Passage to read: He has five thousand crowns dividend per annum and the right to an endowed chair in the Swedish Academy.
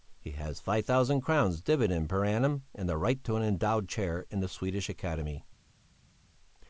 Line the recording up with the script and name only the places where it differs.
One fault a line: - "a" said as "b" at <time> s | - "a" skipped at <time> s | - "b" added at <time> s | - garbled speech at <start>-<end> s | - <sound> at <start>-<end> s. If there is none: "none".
none